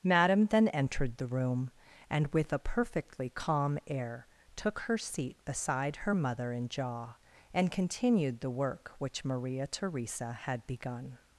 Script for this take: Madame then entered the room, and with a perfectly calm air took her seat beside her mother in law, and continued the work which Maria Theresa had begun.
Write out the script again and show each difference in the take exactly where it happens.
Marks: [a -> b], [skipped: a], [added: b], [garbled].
Madame then entered the room, and with a perfectly calm air took her seat beside her mother in [law, -> jaw] and continued the work which Maria Theresa had begun.